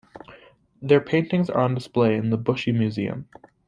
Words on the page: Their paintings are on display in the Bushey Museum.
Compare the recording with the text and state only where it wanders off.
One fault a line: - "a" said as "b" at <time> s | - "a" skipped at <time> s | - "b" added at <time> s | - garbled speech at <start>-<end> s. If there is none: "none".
none